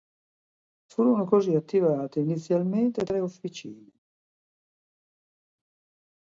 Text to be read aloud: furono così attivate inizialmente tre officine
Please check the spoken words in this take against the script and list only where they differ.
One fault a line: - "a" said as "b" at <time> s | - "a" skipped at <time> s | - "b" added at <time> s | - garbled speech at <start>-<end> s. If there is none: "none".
none